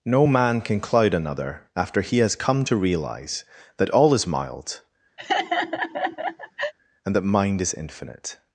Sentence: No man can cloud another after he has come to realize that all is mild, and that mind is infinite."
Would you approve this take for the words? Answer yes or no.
yes